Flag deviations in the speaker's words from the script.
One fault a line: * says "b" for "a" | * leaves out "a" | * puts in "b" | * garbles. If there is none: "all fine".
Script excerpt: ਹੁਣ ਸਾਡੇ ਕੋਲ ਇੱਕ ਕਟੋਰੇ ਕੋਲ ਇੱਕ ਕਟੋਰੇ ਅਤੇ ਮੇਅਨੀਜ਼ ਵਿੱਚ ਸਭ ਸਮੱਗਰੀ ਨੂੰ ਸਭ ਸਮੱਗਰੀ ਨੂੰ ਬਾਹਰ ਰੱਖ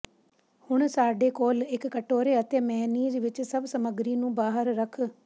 * leaves out "ਕੋਲ ਇੱਕ ਕਟੋਰੇ"
* leaves out "ਸਭ ਸਮੱਗਰੀ ਨੂੰ"